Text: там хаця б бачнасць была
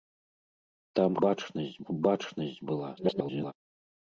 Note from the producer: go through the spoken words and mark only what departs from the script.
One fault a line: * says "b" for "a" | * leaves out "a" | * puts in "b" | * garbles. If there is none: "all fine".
* says "бачнасць" for "хаця"
* garbles